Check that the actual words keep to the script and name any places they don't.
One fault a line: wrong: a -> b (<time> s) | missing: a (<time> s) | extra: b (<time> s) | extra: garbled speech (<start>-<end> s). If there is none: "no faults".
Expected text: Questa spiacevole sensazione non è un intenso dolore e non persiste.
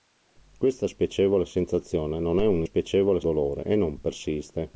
wrong: intenso -> spiacevole (2.6 s)